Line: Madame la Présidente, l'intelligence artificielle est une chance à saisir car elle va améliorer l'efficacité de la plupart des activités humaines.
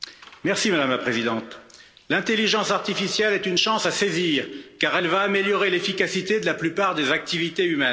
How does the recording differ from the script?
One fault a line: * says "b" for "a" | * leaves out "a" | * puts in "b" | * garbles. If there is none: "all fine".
all fine